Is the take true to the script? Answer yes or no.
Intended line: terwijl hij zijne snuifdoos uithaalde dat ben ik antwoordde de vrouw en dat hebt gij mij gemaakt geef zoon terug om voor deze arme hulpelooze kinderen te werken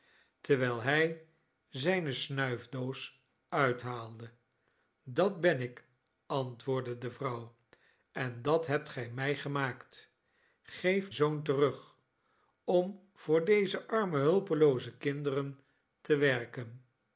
yes